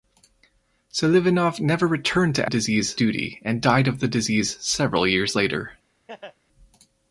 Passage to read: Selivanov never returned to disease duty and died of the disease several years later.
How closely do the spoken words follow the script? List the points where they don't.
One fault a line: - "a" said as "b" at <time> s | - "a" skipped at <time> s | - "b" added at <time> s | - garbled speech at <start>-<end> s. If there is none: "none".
none